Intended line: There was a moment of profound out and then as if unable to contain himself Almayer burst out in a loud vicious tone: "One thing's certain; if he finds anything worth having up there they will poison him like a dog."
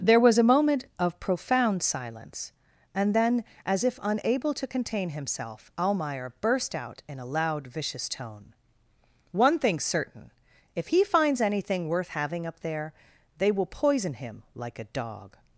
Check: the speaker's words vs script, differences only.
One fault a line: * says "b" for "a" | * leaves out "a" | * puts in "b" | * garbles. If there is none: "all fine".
* says "silence" for "out"